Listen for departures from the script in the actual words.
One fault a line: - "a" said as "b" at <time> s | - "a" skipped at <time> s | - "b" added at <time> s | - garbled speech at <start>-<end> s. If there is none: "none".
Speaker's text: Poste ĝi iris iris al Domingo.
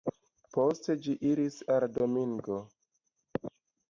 - "iris" skipped at 1.6 s